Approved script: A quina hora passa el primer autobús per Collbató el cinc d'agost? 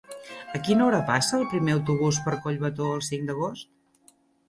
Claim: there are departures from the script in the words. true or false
false